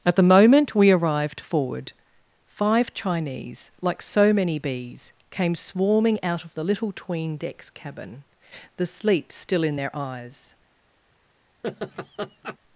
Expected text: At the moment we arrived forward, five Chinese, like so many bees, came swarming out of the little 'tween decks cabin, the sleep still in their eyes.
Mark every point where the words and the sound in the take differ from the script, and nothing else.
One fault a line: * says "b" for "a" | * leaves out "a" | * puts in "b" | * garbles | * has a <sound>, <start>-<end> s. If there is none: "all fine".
* has a laugh, 11.6-12.6 s